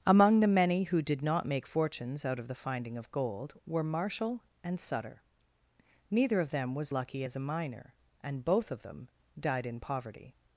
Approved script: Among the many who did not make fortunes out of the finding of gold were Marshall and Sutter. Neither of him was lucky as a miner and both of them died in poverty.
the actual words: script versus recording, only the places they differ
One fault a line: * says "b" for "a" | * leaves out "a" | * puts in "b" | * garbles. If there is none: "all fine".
* says "them" for "him"